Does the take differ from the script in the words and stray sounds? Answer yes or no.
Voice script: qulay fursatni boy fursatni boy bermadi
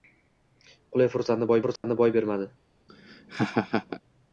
yes